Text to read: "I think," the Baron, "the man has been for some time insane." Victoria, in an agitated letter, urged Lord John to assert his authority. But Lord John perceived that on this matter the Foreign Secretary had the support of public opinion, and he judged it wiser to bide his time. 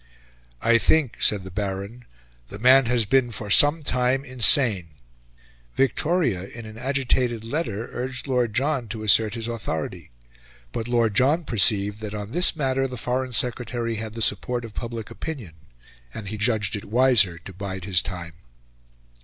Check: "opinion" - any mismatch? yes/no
no